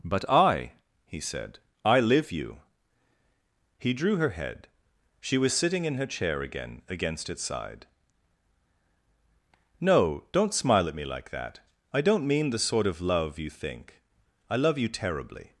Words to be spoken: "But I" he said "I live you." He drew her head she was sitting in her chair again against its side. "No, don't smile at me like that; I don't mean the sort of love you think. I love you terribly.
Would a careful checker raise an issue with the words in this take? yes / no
no